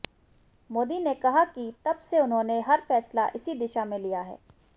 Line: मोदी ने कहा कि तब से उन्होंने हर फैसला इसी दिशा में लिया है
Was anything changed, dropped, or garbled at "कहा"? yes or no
no